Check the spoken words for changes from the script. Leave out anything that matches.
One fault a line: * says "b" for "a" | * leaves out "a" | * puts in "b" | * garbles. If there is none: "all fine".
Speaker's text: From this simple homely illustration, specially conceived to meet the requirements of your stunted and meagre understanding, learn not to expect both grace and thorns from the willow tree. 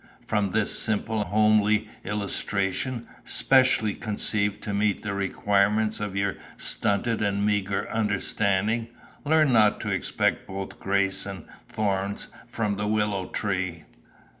all fine